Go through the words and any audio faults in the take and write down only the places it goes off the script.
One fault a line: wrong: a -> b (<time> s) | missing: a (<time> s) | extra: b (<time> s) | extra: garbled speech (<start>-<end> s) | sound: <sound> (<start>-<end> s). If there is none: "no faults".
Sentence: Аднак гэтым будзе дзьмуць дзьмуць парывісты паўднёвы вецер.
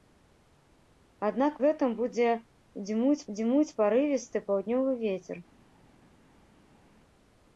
no faults